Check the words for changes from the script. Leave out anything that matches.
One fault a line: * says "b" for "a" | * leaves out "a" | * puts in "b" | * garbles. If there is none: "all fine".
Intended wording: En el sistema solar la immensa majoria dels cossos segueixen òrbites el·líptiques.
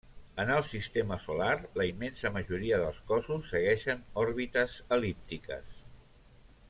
all fine